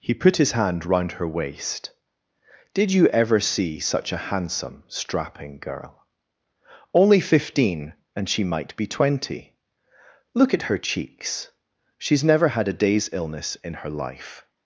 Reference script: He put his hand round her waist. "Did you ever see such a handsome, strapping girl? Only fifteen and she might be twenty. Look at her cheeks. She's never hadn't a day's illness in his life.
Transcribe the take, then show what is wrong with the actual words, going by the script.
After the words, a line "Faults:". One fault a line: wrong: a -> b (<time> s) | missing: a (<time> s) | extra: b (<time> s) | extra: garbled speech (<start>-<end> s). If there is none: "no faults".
He put his hand round her waist. "Did you ever see such a handsome, strapping girl? Only fifteen and she might be twenty. Look at her cheeks. She's never had a day's illness in her life.
Faults:
wrong: hadn't -> had (12.5 s)
wrong: his -> her (13.8 s)